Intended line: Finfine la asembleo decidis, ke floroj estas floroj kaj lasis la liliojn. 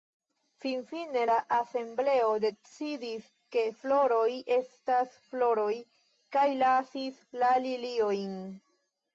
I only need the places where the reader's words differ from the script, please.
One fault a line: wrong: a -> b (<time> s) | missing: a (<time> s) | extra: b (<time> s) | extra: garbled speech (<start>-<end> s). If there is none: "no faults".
no faults